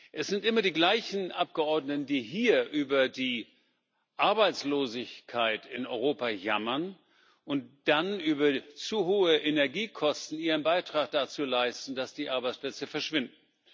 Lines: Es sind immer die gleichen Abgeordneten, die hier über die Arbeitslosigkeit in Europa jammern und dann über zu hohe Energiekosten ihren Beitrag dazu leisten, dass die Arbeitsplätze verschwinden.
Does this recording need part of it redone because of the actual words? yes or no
no